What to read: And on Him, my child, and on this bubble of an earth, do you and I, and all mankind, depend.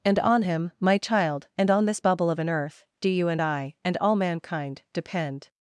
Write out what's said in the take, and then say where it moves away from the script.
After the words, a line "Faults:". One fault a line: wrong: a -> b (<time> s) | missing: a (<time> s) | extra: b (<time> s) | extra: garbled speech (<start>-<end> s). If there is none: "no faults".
And on Him, my child, and on this bubble of an earth, do you and I, and all mankind, depend.
Faults:
no faults